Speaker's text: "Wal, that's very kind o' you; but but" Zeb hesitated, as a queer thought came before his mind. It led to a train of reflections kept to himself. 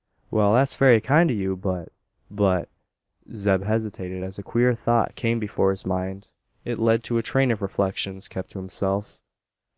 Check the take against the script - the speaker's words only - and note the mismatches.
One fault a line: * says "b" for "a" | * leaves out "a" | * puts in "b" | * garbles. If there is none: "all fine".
all fine